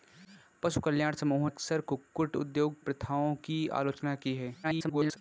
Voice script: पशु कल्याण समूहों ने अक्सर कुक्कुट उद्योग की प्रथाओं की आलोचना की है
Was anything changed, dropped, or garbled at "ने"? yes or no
yes